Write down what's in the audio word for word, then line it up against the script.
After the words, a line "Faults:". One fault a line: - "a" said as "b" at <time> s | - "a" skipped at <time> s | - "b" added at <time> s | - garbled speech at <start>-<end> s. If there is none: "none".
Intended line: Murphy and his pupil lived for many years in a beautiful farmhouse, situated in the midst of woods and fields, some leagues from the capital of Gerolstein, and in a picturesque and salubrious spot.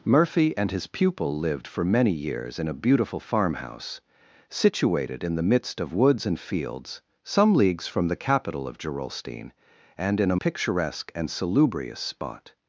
Murphy and his pupil lived for many years in a beautiful farmhouse, situated in the midst of woods and fields, some leagues from the capital of Gerolstein, and in a picturesque and salubrious spot.
Faults:
none